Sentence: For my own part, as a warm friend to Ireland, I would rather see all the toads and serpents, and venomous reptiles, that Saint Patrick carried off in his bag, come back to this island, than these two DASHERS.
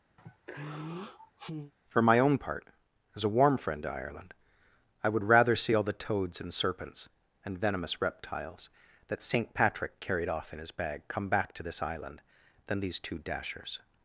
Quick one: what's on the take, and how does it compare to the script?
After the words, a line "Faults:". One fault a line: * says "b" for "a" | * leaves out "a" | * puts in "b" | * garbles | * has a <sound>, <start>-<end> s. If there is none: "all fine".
For my own part, as a warm friend to Ireland, I would rather see all the toads and serpents, and venomous reptiles, that Saint Patrick carried off in his bag, come back to this island, than these two DASHERS.
Faults:
* has a sigh, 0.2-1.7 s